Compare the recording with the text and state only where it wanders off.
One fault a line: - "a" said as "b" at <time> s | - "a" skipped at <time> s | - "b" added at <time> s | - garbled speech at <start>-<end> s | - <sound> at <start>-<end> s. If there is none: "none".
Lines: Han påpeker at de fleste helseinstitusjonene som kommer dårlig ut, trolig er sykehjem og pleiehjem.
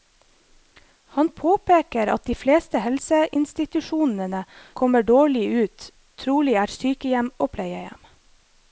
- "som" skipped at 4.4 s